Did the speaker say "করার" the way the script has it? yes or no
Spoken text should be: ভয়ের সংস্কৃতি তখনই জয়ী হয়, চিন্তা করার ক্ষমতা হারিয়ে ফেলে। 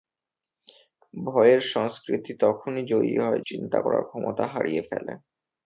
yes